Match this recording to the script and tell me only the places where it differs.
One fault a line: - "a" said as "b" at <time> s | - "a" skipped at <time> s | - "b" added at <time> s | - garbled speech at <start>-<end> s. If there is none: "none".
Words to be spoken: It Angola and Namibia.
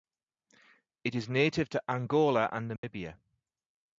- "is native to" added at 1.1 s